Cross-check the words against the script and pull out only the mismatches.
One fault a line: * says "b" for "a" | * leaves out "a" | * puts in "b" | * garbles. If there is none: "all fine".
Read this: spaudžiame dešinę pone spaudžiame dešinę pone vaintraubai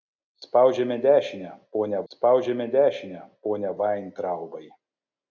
all fine